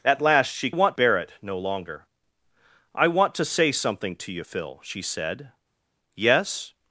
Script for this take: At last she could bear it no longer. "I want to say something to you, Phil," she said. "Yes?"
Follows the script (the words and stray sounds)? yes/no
no